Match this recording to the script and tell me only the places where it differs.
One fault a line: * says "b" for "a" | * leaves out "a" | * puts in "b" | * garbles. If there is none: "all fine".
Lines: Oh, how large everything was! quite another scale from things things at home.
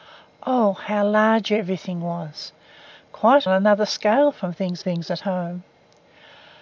all fine